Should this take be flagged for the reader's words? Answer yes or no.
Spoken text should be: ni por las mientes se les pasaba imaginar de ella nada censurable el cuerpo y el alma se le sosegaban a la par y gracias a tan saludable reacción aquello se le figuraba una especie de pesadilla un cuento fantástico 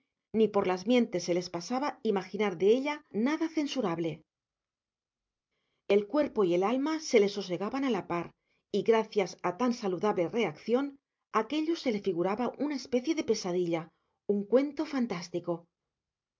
no